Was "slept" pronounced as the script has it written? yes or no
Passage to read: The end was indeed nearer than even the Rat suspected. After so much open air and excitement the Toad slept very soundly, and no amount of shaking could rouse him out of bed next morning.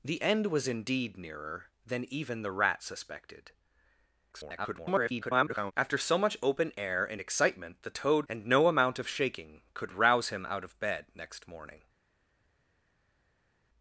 no